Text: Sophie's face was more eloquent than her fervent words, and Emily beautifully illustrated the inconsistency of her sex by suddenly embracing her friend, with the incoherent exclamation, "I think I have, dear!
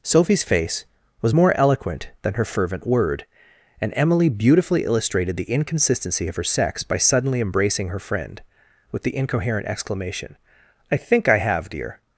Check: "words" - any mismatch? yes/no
yes